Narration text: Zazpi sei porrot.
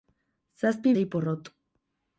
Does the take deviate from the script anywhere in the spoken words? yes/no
no